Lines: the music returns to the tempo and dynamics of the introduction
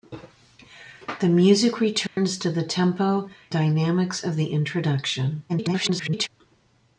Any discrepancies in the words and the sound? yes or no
yes